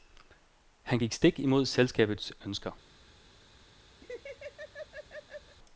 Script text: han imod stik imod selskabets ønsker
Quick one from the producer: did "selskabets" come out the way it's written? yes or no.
yes